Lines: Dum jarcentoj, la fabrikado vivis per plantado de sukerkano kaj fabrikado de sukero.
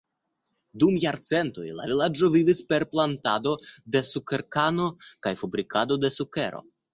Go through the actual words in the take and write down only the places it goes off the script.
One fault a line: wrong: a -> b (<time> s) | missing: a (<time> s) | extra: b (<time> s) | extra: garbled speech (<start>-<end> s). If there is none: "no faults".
wrong: fabrikado -> vilaĝo (1.9 s)